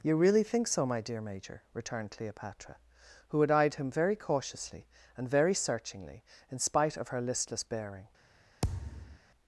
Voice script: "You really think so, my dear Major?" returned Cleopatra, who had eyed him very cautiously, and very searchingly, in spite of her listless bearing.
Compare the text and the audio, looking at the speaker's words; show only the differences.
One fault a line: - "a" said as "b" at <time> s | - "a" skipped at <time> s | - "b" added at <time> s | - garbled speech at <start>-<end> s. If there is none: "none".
none